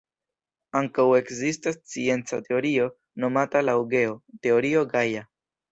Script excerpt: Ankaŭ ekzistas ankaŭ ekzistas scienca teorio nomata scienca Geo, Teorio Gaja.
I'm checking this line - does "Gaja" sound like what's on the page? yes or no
yes